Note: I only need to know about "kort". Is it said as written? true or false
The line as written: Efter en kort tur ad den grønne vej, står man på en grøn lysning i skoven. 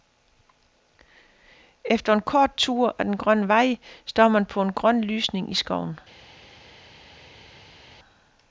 true